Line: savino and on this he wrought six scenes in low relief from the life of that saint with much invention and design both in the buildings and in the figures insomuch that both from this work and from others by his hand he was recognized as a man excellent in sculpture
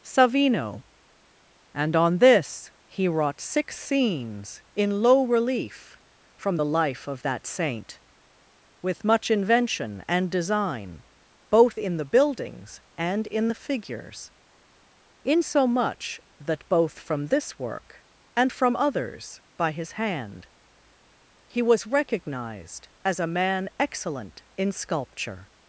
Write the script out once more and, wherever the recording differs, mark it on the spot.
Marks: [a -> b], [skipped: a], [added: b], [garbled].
savino and on this he wrought six scenes in low relief from the life of that saint with much invention and design both in the buildings and in the figures insomuch that both from this work and from others by his hand he was recognized as a man excellent in sculpture